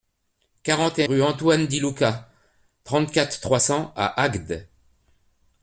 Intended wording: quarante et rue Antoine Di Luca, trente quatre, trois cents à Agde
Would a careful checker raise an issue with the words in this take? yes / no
no